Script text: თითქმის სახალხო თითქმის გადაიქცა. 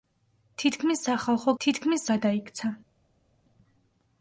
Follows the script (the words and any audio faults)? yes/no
yes